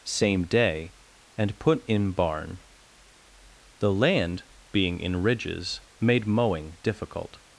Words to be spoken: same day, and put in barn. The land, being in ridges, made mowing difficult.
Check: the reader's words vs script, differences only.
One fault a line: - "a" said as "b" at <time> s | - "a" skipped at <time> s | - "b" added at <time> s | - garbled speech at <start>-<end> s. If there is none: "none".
none